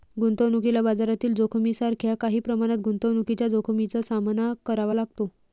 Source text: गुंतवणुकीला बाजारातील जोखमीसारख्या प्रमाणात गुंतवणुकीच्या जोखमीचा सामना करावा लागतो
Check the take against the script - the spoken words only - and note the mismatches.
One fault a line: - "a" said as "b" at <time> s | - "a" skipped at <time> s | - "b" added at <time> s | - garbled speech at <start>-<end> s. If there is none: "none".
- "काही" added at 2.1 s